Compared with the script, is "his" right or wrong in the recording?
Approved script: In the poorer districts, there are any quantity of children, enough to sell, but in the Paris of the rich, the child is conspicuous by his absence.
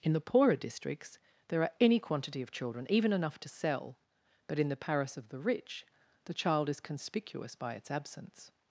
wrong